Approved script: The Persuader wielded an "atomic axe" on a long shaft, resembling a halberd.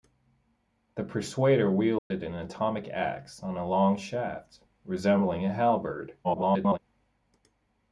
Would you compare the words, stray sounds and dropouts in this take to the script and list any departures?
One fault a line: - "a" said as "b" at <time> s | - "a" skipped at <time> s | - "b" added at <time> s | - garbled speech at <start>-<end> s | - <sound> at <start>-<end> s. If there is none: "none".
- dropout at 2.0-2.1 s
- garbled speech at 6.2-6.8 s